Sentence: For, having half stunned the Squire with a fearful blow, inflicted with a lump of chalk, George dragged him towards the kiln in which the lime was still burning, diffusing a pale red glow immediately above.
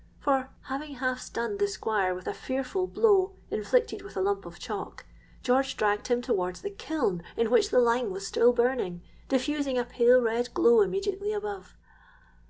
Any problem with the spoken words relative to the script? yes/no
no